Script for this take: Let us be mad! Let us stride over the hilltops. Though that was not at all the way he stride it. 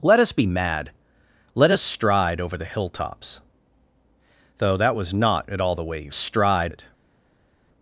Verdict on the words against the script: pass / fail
pass